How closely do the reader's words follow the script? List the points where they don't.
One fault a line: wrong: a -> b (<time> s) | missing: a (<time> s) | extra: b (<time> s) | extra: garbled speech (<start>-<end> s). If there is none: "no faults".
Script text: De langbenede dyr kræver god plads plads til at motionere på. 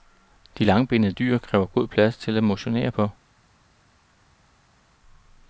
missing: plads (2.2 s)